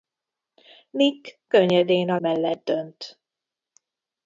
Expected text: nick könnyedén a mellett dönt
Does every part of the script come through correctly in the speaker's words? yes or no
yes